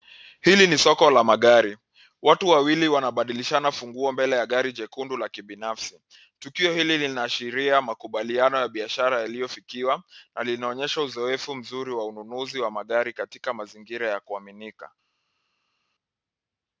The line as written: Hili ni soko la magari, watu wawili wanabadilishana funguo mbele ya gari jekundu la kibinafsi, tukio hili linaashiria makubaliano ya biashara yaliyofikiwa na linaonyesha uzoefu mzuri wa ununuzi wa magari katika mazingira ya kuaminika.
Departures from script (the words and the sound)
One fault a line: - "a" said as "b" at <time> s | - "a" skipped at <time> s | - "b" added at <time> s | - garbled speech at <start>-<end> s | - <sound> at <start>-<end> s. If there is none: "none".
none